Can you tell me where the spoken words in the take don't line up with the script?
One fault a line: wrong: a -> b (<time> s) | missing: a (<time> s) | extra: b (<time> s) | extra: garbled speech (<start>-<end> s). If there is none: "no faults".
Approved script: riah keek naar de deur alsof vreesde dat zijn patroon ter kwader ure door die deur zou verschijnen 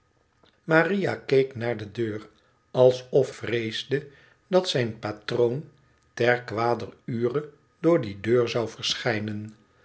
no faults